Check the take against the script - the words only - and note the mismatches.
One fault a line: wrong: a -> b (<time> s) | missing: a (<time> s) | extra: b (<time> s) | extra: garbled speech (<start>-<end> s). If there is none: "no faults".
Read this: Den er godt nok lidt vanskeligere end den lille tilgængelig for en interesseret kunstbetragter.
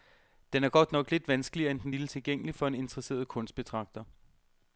no faults